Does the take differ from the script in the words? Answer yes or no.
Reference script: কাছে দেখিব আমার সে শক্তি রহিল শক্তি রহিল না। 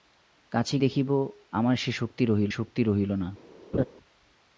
no